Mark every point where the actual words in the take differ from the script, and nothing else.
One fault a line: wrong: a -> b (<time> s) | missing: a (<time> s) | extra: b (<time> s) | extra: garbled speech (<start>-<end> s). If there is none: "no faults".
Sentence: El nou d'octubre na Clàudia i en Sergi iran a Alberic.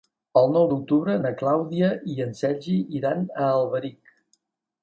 no faults